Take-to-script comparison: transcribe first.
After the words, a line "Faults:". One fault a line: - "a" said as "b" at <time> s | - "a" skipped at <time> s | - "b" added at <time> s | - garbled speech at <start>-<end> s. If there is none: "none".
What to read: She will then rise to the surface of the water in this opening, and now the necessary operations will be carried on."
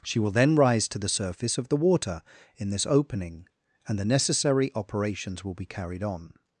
She will then rise to the surface of the water in this opening, and the necessary operations will be carried on."
Faults:
- "now" skipped at 4.0 s